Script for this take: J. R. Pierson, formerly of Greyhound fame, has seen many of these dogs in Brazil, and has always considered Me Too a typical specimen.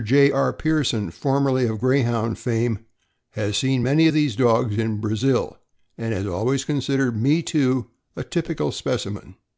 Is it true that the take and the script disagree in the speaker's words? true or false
false